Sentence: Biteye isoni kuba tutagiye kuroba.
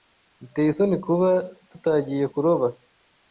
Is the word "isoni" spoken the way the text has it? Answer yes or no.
yes